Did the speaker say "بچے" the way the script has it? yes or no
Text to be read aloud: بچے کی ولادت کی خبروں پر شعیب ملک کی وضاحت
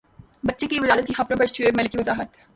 yes